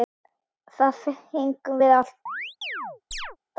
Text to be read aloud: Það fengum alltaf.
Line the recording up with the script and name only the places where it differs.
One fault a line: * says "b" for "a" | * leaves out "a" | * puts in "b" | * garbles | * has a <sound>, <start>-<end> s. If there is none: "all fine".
* puts in "við"
* has a chirp, 2.3-3.4 s